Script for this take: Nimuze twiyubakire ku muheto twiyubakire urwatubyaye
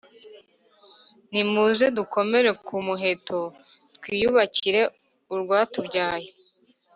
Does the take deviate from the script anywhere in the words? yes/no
yes